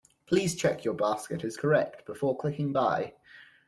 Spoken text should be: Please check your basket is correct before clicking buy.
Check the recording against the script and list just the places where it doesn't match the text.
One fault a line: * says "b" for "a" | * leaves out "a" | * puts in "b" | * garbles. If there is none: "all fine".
all fine